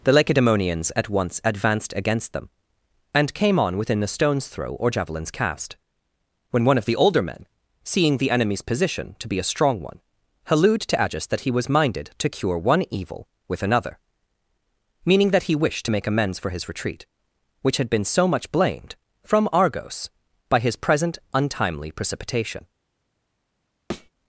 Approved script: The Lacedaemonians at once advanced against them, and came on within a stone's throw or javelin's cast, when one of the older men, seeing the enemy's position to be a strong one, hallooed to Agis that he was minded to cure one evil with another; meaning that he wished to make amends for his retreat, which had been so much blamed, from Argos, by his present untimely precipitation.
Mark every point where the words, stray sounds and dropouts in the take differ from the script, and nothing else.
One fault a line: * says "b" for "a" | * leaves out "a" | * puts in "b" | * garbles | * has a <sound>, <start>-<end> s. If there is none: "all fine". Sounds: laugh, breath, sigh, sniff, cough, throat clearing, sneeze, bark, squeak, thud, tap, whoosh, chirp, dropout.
* has a thud, 23.9-24.1 s